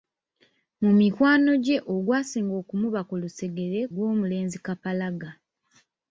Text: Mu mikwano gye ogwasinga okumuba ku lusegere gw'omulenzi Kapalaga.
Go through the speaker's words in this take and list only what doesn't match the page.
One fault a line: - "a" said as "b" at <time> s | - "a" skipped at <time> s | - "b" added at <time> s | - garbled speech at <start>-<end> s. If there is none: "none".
none